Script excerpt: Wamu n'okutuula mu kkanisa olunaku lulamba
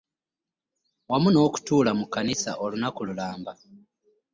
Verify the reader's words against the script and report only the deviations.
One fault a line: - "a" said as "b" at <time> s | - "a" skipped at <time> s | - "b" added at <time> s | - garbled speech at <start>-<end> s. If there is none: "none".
none